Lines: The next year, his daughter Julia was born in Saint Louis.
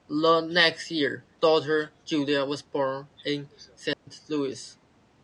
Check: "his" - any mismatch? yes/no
yes